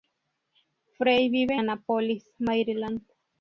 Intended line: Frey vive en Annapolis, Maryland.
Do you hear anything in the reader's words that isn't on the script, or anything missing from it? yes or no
yes